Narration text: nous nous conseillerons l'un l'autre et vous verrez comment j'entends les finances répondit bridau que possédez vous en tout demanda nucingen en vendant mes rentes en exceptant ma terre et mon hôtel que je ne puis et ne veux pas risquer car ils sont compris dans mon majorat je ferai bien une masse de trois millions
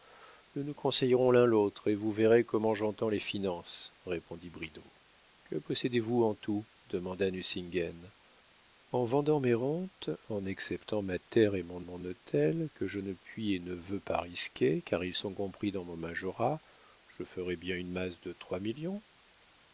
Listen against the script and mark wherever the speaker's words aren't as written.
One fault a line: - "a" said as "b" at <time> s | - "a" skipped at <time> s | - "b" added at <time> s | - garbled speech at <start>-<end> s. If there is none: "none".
- "mon" added at 11.8 s